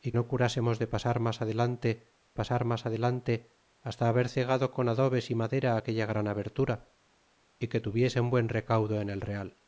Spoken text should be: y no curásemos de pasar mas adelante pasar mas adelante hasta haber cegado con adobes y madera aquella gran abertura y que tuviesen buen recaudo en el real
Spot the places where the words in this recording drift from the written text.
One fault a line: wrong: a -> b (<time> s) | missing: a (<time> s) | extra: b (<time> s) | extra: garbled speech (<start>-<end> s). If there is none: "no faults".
no faults